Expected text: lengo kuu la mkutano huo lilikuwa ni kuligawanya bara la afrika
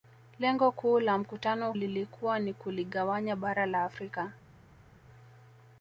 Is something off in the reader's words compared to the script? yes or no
yes